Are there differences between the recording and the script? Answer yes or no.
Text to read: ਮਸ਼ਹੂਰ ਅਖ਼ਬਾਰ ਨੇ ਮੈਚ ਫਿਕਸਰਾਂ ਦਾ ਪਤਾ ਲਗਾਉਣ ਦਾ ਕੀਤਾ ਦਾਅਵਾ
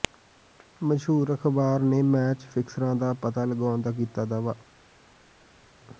no